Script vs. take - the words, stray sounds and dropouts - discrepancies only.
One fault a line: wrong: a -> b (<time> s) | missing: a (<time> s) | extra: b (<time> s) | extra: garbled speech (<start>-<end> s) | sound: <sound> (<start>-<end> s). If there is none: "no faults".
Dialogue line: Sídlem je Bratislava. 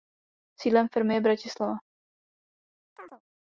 extra: firmy (0.9 s)
sound: chirp (3.0-3.2 s)